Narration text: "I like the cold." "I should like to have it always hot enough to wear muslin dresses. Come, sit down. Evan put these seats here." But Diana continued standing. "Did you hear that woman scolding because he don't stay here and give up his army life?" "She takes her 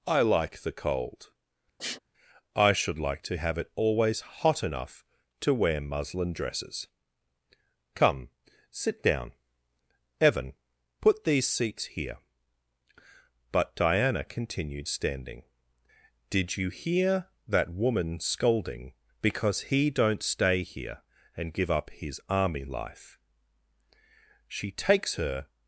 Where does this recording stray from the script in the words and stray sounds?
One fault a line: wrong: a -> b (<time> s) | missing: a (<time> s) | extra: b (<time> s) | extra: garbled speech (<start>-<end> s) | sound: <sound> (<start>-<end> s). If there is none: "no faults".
sound: sniff (1.8-2.0 s)